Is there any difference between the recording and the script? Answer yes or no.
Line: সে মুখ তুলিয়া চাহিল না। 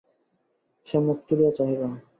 no